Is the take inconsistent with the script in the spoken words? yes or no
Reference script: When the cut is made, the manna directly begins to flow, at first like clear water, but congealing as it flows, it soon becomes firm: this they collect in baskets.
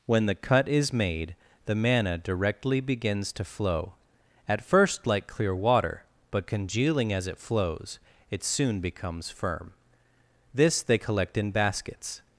no